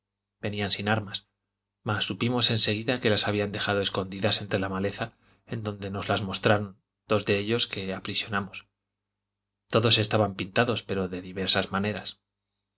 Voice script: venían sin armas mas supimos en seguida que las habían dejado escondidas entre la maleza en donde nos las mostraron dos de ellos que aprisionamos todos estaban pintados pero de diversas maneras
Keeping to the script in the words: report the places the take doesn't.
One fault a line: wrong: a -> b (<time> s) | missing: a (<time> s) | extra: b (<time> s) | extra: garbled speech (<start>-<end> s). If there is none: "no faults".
no faults